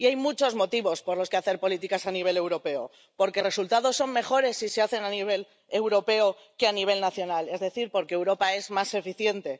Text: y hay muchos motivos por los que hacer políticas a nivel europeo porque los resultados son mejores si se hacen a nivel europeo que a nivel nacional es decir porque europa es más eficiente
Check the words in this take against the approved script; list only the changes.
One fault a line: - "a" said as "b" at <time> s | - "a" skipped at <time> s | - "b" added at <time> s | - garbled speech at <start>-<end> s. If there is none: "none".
- "los" skipped at 3.4 s